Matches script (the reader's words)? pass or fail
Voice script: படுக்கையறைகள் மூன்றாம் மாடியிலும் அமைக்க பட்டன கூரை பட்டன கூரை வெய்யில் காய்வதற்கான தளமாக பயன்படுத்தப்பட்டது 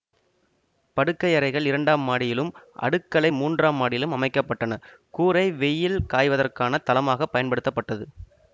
fail